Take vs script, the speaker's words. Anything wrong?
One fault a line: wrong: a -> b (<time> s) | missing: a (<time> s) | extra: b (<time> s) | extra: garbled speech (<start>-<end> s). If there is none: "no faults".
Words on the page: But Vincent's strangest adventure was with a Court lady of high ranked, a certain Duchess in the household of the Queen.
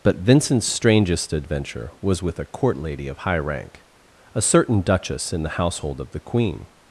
wrong: ranked -> rank (3.4 s)